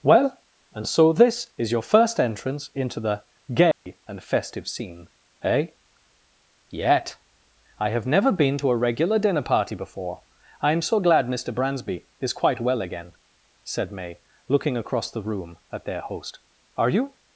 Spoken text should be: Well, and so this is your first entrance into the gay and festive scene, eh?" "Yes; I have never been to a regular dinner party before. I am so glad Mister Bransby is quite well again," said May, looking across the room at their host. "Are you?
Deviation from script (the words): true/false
true